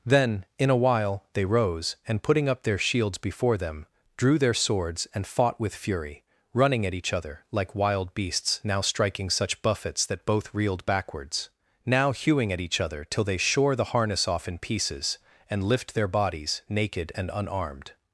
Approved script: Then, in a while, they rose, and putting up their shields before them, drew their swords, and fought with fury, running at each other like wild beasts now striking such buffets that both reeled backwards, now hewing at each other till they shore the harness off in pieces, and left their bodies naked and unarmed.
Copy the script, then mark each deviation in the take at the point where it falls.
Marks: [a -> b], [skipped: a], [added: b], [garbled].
Then, in a while, they rose, and putting up their shields before them, drew their swords, and fought with fury, running at each other like wild beasts now striking such buffets that both reeled backwards, now hewing at each other till they shore the harness off in pieces, and [left -> lift] their bodies naked and unarmed.